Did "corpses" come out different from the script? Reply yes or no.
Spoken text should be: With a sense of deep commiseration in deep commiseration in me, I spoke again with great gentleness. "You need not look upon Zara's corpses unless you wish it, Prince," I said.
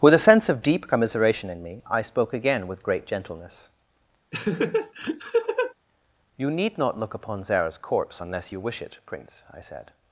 yes